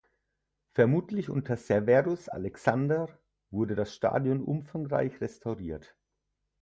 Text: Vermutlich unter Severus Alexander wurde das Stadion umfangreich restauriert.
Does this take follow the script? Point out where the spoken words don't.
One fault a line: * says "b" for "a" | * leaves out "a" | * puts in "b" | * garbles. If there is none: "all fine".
all fine